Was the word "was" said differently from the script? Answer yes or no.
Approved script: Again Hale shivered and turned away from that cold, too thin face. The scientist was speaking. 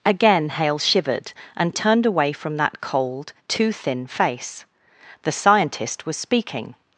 no